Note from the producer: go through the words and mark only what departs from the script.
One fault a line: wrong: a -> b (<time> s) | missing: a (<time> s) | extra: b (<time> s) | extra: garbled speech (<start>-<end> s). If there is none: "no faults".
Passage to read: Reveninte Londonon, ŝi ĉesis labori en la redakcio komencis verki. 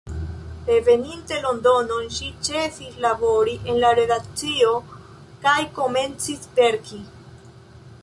extra: kaj (5.5 s)